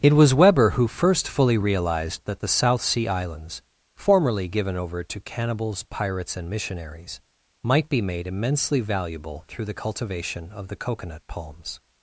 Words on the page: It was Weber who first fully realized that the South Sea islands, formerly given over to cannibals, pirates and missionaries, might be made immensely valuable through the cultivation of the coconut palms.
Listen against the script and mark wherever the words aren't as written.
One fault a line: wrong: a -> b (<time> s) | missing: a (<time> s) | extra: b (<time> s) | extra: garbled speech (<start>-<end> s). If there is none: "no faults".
no faults